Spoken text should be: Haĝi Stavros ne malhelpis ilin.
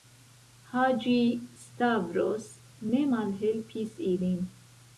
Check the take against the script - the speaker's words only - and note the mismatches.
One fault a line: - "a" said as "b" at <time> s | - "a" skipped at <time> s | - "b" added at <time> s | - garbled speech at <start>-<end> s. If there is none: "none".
none